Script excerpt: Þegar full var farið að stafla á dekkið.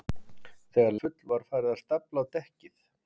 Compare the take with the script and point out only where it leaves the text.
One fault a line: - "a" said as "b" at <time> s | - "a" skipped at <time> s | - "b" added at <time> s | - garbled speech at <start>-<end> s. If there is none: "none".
none